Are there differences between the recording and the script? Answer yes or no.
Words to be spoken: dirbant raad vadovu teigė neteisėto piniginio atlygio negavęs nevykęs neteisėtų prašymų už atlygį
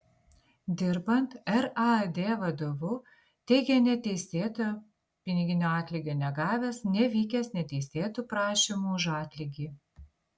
no